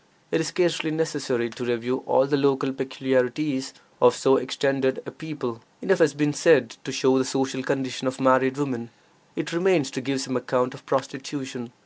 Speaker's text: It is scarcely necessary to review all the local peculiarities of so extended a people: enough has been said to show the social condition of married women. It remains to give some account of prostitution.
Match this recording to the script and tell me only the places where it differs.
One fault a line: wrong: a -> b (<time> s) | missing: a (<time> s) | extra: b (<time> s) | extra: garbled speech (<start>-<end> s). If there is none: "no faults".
no faults